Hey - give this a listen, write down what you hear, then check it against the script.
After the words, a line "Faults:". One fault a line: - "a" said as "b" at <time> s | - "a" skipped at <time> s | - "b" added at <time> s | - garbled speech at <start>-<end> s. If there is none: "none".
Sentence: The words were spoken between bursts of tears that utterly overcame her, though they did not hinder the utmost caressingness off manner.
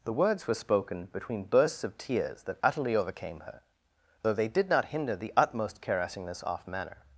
The words were spoken between bursts of tears that utterly overcame her, though they did not hinder the utmost caressingness off manner.
Faults:
none